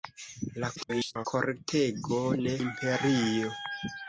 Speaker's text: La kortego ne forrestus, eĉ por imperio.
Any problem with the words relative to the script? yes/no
yes